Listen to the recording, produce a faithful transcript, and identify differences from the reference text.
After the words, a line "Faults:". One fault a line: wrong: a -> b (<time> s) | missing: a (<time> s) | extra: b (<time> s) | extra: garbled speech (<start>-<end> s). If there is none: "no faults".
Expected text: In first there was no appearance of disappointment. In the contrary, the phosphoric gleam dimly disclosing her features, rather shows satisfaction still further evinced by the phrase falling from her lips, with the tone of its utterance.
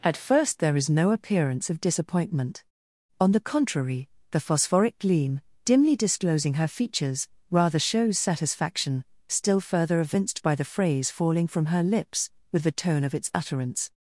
At first there is no appearance of disappointment. On the contrary, the phosphoric gleam dimly disclosing her features, rather shows satisfaction still further evinced by the phrase falling from her lips, with the tone of its utterance.
Faults:
wrong: In -> At (0.0 s)
wrong: was -> is (0.8 s)
wrong: In -> On (3.2 s)